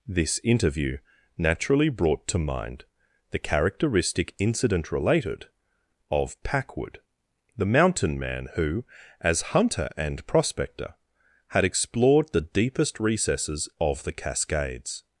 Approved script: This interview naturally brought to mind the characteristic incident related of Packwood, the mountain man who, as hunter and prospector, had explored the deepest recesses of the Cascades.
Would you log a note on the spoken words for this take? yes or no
no